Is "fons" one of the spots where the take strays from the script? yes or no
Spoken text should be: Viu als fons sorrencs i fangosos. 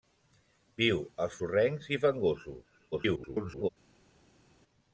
yes